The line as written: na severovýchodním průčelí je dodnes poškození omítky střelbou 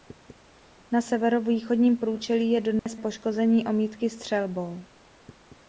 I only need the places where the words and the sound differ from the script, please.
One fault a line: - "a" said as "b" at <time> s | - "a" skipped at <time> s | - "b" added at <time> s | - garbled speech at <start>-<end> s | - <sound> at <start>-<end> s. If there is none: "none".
- dropout at 2.8-2.9 s